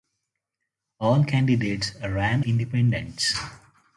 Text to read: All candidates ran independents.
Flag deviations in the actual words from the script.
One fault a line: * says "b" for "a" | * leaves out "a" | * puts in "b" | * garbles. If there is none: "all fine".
all fine